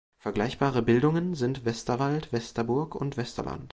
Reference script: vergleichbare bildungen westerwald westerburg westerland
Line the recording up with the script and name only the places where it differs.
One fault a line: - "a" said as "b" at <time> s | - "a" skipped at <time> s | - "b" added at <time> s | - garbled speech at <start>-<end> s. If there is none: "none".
- "sind" added at 1.4 s
- "und" added at 3.0 s